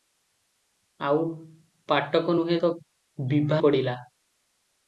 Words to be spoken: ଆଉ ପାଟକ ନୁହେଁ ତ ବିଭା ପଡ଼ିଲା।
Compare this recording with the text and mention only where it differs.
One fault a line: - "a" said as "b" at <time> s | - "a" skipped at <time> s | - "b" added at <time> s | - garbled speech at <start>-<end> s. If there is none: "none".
none